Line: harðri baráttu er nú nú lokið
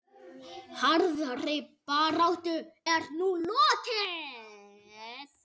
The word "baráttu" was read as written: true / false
true